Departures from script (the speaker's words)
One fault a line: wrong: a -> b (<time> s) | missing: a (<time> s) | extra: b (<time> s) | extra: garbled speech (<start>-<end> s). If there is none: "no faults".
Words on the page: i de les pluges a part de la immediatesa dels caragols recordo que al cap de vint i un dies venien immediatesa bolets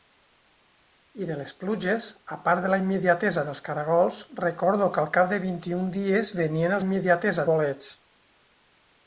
no faults